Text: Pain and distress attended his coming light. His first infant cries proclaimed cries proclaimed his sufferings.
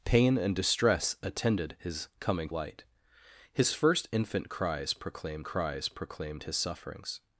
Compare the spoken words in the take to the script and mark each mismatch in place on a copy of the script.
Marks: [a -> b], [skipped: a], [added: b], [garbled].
Pain and distress attended his coming light. His first infant cries proclaimed cries proclaimed his sufferings.